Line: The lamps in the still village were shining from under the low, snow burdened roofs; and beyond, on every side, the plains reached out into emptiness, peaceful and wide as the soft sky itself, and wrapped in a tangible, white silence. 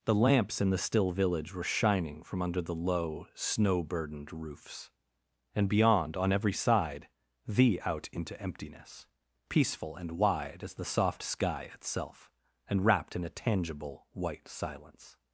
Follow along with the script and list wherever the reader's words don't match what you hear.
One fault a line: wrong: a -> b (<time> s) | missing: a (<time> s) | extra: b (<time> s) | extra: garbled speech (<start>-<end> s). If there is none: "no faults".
missing: plains reached (7.8 s)